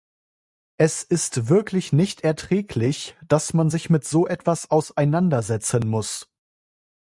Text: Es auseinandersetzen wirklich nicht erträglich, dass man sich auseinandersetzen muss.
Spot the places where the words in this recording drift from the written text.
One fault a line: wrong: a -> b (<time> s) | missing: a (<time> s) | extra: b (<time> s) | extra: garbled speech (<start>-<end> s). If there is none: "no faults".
wrong: auseinandersetzen -> ist (1.0 s)
extra: mit so etwas (3.9 s)